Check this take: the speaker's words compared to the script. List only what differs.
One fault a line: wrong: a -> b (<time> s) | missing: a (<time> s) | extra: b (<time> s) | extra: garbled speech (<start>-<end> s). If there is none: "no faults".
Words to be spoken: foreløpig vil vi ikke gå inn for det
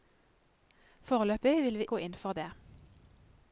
missing: ikke (1.9 s)